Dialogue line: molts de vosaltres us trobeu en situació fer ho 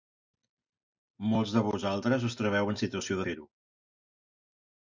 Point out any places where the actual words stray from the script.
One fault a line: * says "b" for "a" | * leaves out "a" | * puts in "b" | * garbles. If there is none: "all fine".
all fine